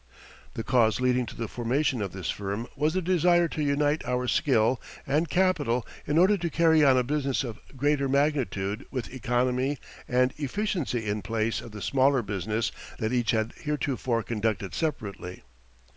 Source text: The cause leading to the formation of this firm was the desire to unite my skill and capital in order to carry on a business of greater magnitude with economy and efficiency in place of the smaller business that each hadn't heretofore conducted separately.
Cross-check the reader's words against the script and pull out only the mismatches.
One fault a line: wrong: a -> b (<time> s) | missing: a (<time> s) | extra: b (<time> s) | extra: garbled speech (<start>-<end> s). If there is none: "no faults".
wrong: my -> our (4.0 s)
wrong: hadn't -> had (13.3 s)